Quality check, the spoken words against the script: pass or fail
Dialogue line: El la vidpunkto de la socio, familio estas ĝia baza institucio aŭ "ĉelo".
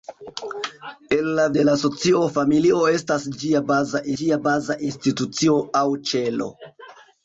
fail